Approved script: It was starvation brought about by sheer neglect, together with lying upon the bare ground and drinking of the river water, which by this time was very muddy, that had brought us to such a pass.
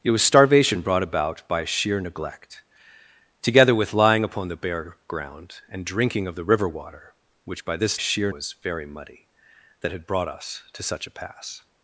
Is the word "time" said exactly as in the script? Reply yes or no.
no